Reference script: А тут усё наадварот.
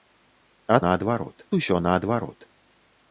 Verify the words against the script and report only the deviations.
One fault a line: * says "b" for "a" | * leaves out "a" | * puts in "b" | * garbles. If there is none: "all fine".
* says "наадварот" for "тут"